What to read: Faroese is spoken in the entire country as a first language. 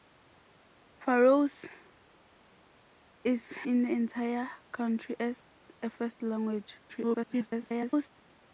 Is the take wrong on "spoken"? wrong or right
wrong